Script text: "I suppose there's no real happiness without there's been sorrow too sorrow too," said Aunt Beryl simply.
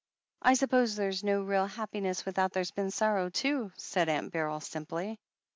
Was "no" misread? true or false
false